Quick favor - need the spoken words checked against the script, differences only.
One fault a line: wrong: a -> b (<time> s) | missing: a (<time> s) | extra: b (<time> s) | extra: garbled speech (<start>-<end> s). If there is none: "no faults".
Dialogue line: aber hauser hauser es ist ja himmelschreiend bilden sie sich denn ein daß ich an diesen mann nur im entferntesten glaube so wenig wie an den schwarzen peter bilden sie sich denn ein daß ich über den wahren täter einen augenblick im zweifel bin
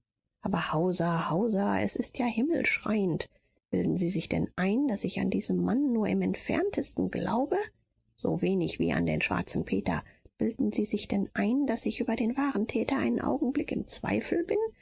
no faults